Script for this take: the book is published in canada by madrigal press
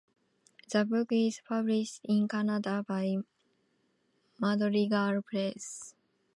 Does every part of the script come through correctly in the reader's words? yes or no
yes